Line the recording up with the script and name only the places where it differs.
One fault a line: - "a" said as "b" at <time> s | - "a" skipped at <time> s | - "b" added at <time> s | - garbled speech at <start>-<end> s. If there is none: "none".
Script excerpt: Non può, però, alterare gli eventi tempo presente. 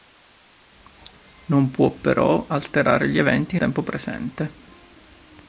none